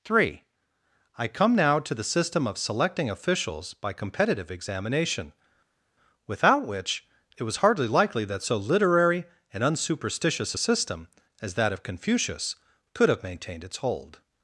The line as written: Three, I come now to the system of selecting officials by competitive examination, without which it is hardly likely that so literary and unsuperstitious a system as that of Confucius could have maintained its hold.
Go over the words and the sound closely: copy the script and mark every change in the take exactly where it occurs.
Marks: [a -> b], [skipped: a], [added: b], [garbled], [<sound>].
Three, I come now to the system of selecting officials by competitive examination, without which it [is -> was] hardly likely that so literary and unsuperstitious a system as that of Confucius could have maintained its hold.